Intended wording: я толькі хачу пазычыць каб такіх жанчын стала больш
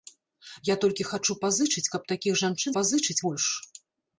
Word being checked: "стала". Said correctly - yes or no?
no